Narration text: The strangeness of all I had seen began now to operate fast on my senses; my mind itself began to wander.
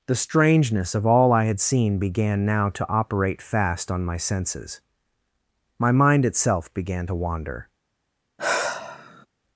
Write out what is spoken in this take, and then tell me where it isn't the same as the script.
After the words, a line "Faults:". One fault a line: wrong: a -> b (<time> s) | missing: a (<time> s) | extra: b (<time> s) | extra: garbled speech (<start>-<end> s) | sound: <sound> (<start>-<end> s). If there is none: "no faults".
The strangeness of all I had seen began now to operate fast on my senses; my mind itself began to wander.
Faults:
sound: sigh (8.4-9.3 s)